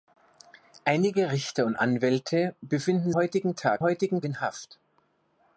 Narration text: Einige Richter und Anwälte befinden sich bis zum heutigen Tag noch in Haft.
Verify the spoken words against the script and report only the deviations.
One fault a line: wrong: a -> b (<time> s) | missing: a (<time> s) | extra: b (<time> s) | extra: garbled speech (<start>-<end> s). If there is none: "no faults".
missing: sich bis zum (3.1 s)
wrong: noch -> heutigen (3.8 s)